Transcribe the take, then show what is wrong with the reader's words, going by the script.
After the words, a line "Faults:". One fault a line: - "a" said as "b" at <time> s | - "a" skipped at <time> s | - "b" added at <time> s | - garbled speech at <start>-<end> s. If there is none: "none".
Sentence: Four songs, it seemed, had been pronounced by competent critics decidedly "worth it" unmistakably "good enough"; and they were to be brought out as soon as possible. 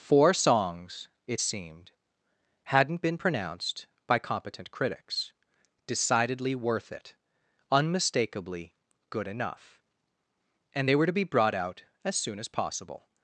Four songs, it seemed, hadn't been pronounced by competent critics decidedly "worth it" unmistakably "good enough"; and they were to be brought out as soon as possible.
Faults:
- "had" said as "hadn't" at 2.6 s